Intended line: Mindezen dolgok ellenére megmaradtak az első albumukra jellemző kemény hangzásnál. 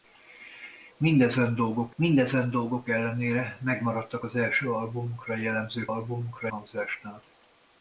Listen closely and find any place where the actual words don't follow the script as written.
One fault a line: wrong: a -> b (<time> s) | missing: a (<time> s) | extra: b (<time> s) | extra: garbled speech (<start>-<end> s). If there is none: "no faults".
extra: mindezen dolgok (2.0 s)
wrong: kemény -> albumukra (5.9 s)